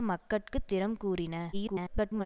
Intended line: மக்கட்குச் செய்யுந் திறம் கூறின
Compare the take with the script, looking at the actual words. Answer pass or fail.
fail